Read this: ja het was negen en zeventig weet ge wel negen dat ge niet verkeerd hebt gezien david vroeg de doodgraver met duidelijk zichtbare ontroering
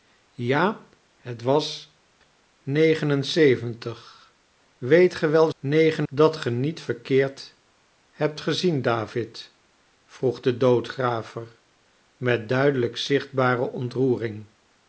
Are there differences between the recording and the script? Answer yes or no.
no